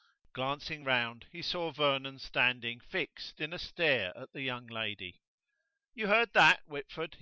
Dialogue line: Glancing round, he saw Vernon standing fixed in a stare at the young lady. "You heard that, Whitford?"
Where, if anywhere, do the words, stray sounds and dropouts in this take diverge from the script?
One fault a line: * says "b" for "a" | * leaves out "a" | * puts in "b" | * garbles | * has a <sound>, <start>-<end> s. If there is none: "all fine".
all fine